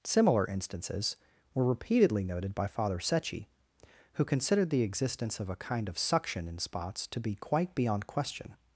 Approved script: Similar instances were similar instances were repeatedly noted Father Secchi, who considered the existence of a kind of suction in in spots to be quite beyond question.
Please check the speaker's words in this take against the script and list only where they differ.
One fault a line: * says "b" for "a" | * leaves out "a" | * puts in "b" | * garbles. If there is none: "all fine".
* leaves out "similar instances were"
* puts in "by"
* leaves out "in"